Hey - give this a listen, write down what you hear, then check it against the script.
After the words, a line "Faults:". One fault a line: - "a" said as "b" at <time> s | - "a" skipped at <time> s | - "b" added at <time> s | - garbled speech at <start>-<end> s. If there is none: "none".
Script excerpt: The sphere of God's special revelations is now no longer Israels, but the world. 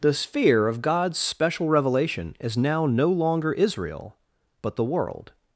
The sphere of God's special revelation is now no longer Israel, but the world.
Faults:
- "revelations" said as "revelation" at 1.7 s
- "Israels" said as "Israel" at 3.5 s